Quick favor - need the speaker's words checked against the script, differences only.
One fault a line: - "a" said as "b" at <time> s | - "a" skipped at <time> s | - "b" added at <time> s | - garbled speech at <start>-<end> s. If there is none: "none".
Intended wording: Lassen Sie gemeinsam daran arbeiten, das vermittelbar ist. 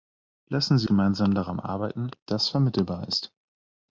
none